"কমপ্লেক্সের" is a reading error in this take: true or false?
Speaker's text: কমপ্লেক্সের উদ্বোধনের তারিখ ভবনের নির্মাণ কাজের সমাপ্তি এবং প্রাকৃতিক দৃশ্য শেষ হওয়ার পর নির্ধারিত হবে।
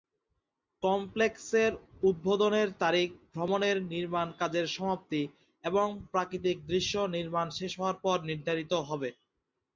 false